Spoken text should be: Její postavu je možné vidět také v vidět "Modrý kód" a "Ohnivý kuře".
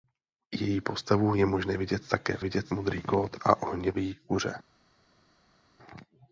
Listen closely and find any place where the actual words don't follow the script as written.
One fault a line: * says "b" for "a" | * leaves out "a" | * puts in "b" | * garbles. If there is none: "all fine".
all fine